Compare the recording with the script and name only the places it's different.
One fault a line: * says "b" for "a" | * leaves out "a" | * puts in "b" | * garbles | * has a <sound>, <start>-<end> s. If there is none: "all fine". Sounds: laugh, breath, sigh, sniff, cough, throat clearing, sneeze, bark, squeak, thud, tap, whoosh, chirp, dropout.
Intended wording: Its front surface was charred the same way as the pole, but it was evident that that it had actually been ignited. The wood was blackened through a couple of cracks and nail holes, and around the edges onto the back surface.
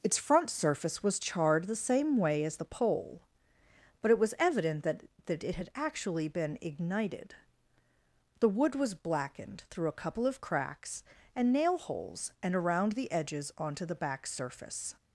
all fine